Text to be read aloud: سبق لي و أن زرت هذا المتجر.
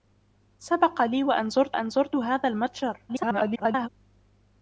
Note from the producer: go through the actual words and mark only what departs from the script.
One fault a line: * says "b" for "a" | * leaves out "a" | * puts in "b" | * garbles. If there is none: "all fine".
* puts in "أن زرت"
* garbles